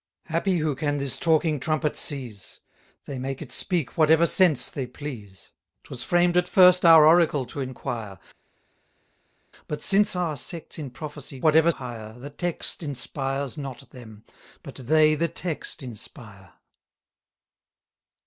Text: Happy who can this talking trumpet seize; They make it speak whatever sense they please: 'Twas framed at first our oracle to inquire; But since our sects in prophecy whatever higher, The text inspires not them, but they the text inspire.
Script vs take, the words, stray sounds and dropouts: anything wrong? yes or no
no